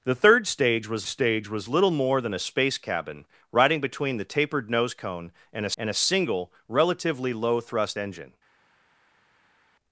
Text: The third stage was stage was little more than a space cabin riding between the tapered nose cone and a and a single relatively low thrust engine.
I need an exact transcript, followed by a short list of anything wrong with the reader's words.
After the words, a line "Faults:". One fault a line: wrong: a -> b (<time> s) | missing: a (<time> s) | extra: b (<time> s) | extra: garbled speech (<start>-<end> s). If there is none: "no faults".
The third stage was stage was little more than a space cabin riding between the tapered nose cone and a and a single relatively low thrust engine.
Faults:
no faults